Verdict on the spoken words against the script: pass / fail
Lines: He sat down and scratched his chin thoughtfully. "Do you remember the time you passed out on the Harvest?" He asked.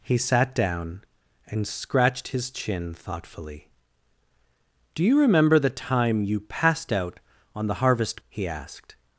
pass